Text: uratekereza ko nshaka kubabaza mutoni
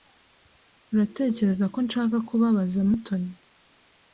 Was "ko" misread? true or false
false